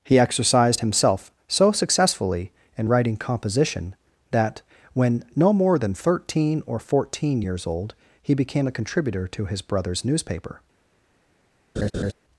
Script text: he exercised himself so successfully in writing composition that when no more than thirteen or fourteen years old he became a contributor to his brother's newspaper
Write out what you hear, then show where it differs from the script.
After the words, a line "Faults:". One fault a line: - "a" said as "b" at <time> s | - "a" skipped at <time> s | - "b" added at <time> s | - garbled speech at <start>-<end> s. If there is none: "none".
he exercised himself so successfully in writing composition that when no more than thirteen or fourteen years old he became a contributor to his brother's newspaper
Faults:
none